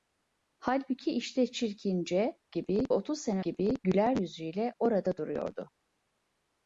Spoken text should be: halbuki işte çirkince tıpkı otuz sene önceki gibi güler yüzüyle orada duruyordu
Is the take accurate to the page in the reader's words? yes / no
no